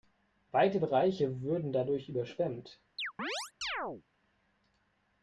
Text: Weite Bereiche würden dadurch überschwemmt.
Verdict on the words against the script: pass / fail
pass